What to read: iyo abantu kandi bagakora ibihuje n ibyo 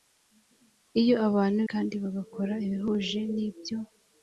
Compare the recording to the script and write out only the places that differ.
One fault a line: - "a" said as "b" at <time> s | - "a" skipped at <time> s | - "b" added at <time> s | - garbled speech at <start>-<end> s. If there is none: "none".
none